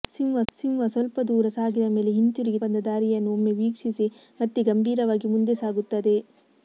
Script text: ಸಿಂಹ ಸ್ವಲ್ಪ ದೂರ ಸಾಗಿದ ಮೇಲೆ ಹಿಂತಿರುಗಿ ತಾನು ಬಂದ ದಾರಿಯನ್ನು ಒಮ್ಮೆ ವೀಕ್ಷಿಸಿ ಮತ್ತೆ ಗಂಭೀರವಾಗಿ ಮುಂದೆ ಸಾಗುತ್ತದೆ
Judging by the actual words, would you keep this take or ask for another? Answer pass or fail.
fail